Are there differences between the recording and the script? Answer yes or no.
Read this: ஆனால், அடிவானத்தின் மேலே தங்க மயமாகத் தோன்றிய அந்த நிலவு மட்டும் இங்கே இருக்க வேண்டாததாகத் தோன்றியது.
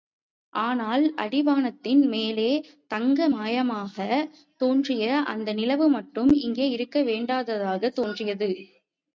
no